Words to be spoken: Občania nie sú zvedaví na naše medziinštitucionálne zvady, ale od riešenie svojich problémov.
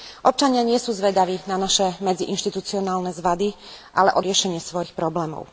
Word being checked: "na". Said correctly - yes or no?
yes